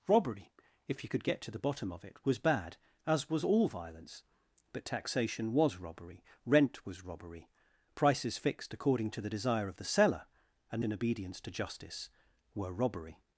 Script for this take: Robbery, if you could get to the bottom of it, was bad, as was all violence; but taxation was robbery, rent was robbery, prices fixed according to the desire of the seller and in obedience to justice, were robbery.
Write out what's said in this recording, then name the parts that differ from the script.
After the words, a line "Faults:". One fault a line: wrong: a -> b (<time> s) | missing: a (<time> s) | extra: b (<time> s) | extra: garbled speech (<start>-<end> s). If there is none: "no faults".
Robbery, if you could get to the bottom of it, was bad, as was all violence; but taxation was robbery, rent was robbery, prices fixed according to the desire of the seller and in obedience to justice, were robbery.
Faults:
no faults